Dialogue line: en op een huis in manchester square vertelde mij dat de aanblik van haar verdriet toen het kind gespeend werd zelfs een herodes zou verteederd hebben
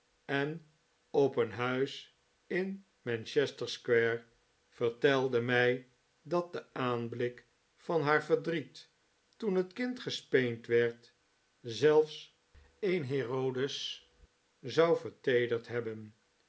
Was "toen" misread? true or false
false